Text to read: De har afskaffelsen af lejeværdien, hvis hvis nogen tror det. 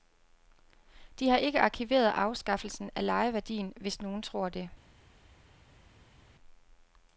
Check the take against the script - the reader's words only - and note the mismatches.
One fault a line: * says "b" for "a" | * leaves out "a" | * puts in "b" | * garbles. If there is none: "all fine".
* puts in "ikke arkiveret"
* leaves out "hvis"